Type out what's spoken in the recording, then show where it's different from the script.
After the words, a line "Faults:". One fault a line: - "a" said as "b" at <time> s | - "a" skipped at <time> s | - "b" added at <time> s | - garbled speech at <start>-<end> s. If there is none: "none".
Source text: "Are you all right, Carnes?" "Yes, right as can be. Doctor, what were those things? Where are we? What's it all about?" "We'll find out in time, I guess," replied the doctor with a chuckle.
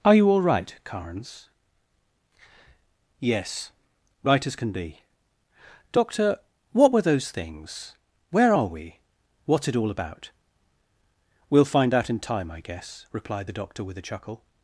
"Are you all right, Carnes?" "Yes, right as can be. Doctor, what were those things? Where are we? What's it all about?" "We'll find out in time, I guess," replied the doctor with a chuckle.
Faults:
none